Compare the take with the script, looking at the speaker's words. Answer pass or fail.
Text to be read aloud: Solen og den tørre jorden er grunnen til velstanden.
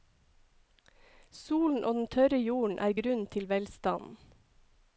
pass